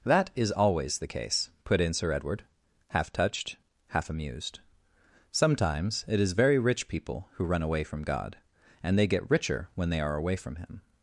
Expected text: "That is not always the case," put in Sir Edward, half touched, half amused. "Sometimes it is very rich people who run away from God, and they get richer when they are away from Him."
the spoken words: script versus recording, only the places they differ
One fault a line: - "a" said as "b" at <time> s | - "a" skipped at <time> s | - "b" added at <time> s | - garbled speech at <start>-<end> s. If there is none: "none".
- "not" skipped at 0.5 s